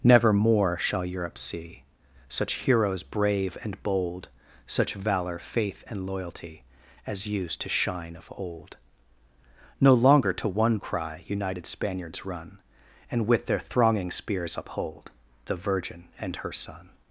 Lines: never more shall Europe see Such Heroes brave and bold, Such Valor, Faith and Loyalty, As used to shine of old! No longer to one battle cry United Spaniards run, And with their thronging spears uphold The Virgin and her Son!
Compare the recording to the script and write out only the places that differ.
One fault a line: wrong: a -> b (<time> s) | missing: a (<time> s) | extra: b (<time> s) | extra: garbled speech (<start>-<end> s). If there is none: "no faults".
missing: battle (10.8 s)